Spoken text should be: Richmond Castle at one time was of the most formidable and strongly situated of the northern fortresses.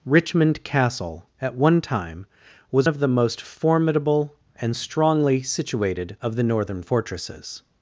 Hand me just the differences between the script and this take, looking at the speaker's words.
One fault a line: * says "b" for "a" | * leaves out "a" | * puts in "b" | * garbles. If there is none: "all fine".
all fine